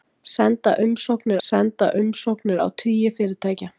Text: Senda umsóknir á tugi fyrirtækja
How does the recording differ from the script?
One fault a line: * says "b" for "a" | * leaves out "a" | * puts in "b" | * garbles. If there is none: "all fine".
* puts in "senda umsóknir"